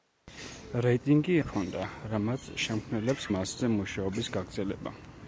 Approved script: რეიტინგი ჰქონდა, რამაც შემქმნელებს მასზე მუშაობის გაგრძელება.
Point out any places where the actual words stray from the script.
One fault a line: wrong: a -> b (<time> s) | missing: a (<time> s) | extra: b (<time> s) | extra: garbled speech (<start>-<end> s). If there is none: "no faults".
no faults